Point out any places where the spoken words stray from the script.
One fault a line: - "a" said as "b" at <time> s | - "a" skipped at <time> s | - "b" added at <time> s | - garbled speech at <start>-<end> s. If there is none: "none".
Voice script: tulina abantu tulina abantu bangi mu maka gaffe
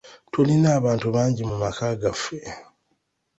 - "tulina abantu" skipped at 1.1 s